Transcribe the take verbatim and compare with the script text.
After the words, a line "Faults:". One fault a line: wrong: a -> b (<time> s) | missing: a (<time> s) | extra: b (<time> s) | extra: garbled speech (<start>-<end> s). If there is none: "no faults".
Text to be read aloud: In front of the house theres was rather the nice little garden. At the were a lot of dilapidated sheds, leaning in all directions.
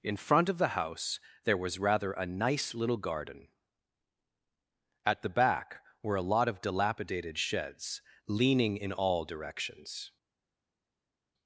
In front of the house there was rather a nice little garden. At the back were a lot of dilapidated sheds, leaning in all directions.
Faults:
wrong: theres -> there (1.4 s)
wrong: the -> a (2.1 s)
extra: back (5.3 s)